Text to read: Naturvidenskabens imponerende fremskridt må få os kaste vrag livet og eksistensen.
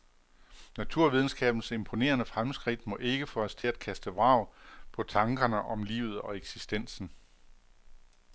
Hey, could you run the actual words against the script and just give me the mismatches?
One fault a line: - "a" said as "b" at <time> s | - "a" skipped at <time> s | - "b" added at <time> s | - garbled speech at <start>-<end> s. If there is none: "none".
- "ikke" added at 3.0 s
- "til at" added at 3.5 s
- "på tankerne om" added at 4.9 s